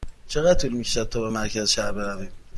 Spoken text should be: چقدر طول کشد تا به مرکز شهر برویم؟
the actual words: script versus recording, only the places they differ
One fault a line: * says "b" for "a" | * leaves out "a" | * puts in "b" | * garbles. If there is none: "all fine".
* puts in "می"